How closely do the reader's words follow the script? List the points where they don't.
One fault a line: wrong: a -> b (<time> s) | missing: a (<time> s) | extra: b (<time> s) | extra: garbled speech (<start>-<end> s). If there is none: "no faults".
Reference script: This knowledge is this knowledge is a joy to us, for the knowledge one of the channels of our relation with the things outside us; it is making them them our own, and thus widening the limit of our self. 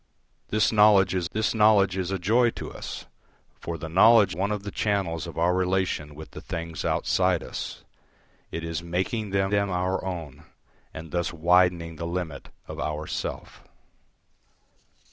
no faults